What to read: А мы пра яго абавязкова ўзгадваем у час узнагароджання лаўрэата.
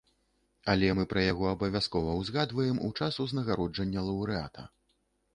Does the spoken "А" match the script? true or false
false